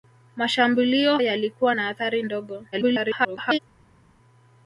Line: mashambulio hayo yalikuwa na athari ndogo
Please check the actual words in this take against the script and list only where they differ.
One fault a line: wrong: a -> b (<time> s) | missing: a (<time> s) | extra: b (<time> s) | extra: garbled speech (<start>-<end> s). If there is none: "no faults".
missing: hayo (1.2 s)
extra: garbled speech (2.7-3.6 s)